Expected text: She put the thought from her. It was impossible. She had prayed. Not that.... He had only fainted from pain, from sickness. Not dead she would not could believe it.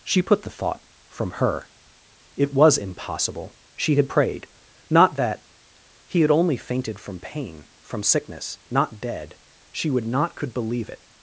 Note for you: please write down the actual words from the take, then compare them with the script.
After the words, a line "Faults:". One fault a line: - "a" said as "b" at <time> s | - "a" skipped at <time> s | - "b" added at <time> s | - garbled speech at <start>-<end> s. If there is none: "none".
She put the thought from her. It was impossible. She had prayed. Not that.... He had only fainted from pain, from sickness. Not dead she would not could believe it.
Faults:
none